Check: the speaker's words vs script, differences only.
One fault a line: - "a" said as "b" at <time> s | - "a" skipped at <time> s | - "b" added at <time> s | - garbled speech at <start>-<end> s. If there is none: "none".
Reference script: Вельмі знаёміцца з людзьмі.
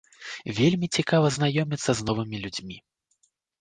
- "цікава" added at 1.0 s
- "новымі" added at 2.1 s